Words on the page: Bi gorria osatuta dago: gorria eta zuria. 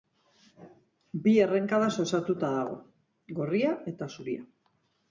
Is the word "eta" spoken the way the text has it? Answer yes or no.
yes